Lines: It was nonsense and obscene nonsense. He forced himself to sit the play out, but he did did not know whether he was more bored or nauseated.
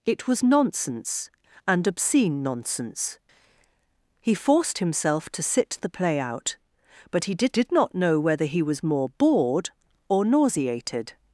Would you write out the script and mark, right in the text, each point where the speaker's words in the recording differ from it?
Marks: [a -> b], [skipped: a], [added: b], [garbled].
It was nonsense and obscene nonsense. He forced himself to sit the play out, but he did did not know whether he was more bored or nauseated.